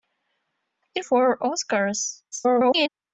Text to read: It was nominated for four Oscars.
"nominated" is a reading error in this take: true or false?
true